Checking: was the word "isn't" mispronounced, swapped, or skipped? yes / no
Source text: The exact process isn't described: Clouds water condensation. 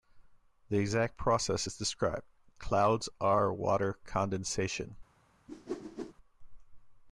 yes